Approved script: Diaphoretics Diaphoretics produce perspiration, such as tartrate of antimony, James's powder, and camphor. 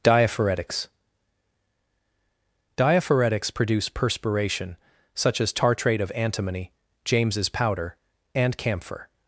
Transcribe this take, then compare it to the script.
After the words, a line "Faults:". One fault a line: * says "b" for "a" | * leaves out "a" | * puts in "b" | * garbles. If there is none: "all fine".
Diaphoretics Diaphoretics produce perspiration, such as tartrate of antimony, James's powder, and camphor.
Faults:
all fine